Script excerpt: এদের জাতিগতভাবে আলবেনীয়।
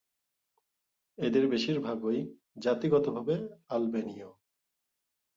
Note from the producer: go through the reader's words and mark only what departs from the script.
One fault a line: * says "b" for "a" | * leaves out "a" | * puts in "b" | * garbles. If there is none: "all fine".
* puts in "বেশিরভাগই"